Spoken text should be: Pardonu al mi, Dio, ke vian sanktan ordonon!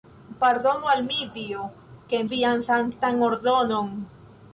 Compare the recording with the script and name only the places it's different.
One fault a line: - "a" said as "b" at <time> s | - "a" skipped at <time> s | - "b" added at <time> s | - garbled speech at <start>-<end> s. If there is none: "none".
none